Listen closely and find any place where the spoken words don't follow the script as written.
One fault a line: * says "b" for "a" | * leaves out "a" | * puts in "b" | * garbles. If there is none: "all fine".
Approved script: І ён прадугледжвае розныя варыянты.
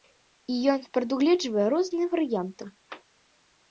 all fine